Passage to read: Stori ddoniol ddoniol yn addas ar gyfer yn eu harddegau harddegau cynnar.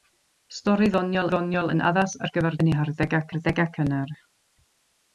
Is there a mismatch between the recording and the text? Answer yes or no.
no